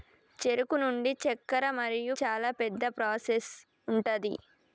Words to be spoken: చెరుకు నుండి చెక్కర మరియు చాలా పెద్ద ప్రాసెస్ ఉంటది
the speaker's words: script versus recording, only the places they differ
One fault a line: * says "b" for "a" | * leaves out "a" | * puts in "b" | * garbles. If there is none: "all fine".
all fine